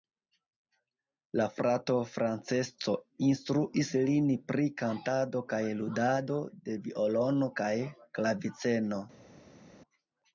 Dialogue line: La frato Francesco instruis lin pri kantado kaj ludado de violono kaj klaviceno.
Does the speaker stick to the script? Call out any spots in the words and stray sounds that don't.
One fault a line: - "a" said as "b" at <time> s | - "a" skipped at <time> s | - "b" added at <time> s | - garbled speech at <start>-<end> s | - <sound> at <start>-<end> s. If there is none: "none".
none